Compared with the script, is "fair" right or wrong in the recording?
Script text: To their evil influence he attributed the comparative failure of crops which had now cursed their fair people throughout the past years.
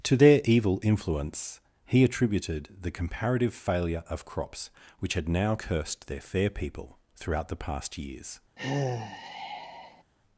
right